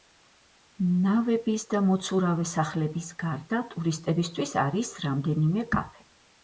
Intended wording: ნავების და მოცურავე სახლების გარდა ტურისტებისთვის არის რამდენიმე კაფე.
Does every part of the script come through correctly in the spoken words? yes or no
yes